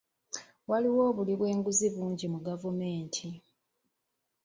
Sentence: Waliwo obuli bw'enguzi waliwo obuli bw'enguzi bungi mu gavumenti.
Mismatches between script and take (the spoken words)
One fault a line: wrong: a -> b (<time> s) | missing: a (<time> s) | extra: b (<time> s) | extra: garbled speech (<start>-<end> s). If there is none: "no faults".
missing: waliwo obuli bw'enguzi (1.9 s)